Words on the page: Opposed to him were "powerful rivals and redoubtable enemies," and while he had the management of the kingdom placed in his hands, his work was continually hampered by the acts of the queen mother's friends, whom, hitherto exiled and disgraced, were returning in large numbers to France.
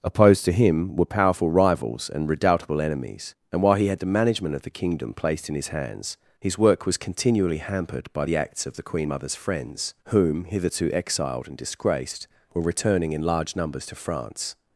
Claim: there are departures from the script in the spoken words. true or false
false